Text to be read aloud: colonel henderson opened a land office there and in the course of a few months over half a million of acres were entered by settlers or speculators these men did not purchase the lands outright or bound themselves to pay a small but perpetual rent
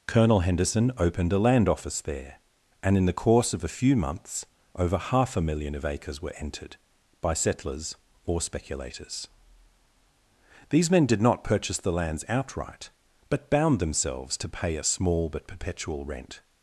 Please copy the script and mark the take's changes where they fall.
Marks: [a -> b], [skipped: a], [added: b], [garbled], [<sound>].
colonel henderson opened a land office there and in the course of a few months over half a million of acres were entered by settlers or speculators these men did not purchase the lands outright [or -> but] bound themselves to pay a small but perpetual rent